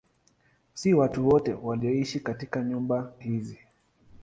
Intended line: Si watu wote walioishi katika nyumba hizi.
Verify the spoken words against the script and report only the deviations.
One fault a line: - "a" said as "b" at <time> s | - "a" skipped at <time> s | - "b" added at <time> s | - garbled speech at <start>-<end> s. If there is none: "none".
none